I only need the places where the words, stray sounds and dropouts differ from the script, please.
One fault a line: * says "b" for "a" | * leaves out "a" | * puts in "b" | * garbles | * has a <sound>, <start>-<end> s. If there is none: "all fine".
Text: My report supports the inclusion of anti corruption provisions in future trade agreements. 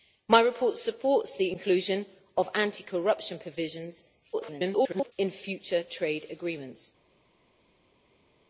* garbles